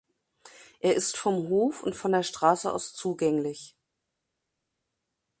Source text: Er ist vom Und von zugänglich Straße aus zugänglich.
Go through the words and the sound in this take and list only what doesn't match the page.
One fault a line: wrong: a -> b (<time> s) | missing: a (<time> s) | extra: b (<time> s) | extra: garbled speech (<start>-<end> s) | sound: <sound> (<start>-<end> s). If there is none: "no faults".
extra: Hof (1.5 s)
wrong: zugänglich -> der (2.1 s)